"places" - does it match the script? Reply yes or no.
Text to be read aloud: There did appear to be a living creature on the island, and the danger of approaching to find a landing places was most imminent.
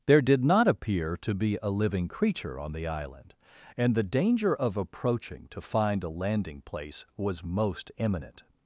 no